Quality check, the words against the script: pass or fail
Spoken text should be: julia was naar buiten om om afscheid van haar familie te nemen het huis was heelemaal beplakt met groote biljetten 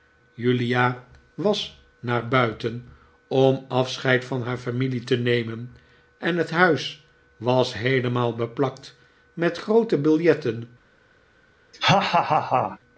fail